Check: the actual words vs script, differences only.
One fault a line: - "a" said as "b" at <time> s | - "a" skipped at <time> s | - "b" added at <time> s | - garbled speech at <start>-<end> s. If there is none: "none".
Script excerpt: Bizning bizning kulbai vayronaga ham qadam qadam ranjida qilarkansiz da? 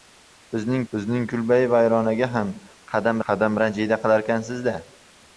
none